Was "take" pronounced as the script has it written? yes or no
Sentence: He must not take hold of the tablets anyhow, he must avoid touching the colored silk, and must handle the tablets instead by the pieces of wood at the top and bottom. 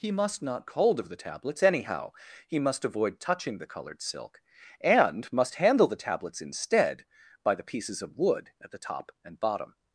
no